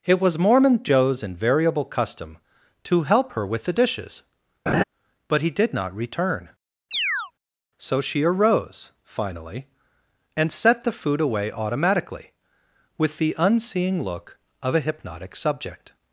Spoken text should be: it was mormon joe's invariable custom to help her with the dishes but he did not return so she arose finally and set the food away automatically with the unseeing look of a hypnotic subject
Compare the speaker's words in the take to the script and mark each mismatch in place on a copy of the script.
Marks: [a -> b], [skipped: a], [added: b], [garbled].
it was mormon joe's invariable custom to help her with the dishes but he did not return so she arose finally and set the food away automatically with the unseeing look of a hypnotic subject